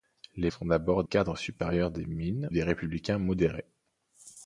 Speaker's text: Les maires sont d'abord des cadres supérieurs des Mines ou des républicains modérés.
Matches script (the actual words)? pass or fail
fail